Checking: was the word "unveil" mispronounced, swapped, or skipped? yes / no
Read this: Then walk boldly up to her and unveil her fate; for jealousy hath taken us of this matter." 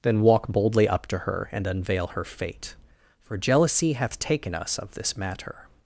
no